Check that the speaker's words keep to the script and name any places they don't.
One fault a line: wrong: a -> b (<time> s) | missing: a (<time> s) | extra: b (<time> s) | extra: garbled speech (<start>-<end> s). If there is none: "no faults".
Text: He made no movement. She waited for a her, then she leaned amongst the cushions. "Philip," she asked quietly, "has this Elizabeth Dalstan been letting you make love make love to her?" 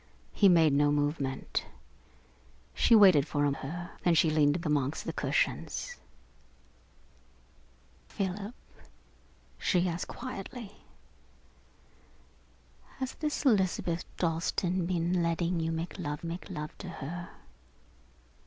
no faults